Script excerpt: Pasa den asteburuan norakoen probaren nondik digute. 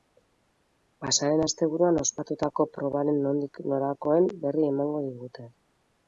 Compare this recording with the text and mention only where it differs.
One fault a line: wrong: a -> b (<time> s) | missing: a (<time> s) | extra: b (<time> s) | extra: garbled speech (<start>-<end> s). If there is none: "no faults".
wrong: norakoen -> ospatutako (2.0 s)
extra: norakoen berri emango (3.7 s)